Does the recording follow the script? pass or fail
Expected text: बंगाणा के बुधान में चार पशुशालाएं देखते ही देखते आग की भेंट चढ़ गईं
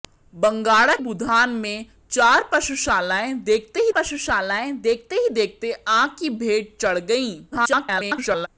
fail